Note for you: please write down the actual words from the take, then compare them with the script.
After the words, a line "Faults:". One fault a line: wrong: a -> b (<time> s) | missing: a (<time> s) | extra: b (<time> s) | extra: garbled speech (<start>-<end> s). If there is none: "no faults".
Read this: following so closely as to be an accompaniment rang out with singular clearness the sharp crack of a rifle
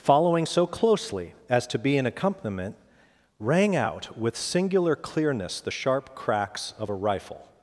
following so closely as to be an accompaniment rang out with singular clearness the sharp cracks of a rifle
Faults:
wrong: crack -> cracks (6.1 s)